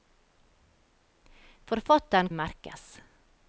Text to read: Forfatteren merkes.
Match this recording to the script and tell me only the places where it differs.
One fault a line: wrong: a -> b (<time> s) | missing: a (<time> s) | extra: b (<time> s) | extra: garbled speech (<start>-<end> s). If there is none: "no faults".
no faults